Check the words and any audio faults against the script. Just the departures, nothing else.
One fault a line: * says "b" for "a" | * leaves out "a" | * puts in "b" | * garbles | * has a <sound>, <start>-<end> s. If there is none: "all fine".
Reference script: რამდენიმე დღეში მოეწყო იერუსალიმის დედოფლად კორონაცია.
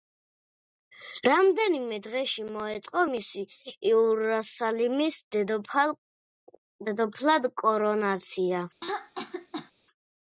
* puts in "მისი"
* has a throat clearing, 8.8-9.7 s